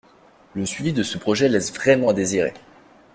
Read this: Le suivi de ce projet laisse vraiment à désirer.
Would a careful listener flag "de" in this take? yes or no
no